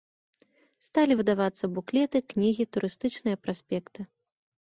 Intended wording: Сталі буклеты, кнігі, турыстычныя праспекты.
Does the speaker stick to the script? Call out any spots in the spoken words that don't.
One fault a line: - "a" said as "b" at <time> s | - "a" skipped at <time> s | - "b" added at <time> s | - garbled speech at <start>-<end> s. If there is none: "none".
- "выдавацца" added at 1.2 s